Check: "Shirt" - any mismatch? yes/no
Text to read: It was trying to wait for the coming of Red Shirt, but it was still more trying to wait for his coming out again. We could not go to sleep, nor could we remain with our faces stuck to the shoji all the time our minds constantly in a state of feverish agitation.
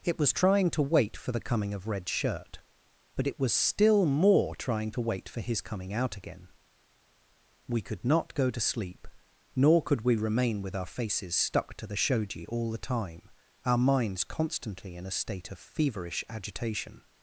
no